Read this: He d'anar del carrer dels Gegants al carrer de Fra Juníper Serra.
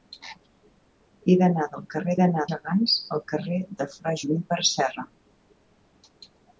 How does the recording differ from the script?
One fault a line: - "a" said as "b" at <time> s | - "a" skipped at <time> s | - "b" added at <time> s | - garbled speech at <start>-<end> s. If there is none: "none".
- "dels" said as "d'anar" at 2.2 s